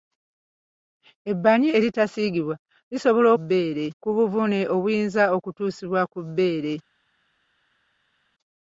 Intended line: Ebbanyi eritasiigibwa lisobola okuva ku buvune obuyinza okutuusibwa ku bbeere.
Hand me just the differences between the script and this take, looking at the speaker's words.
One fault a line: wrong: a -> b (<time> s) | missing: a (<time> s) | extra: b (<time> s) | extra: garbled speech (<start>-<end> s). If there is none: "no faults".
wrong: okuva -> bbeere (3.4 s)